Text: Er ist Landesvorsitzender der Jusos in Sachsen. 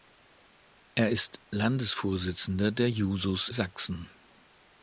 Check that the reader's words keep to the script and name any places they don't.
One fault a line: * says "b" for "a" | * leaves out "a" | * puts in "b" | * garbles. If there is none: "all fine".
* leaves out "in"